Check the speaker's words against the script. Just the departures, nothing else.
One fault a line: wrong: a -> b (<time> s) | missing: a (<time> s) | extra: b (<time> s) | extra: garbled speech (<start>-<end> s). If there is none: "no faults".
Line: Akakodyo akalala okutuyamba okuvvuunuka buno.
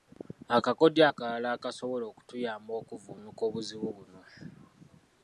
extra: akasobola (1.6 s)
extra: obuzibu (3.5 s)